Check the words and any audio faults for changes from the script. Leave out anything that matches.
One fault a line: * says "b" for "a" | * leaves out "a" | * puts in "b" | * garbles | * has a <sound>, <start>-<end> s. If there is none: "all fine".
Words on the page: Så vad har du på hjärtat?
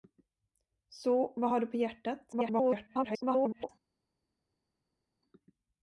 * garbles